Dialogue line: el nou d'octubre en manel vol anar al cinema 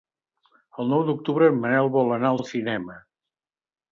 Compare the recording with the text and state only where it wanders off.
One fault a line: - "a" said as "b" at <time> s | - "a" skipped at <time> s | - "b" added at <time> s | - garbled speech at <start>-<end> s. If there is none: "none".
- "al" added at 2.4 s